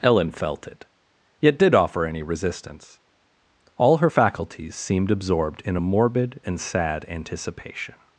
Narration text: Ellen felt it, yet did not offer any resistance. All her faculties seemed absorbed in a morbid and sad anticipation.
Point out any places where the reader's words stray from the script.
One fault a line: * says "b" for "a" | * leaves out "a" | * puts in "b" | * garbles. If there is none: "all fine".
* leaves out "not"